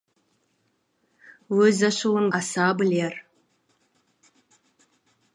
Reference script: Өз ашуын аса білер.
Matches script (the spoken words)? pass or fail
pass